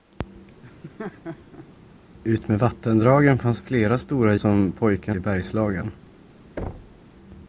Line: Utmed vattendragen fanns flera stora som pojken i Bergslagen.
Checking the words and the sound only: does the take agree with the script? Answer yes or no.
no